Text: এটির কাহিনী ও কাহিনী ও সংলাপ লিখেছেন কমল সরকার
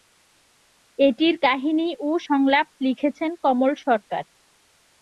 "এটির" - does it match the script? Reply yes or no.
yes